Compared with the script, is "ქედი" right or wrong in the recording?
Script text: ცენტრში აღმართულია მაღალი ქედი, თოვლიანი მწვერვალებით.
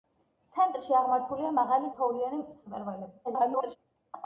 wrong